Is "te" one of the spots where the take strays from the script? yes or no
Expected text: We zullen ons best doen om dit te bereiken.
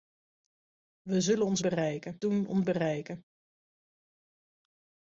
yes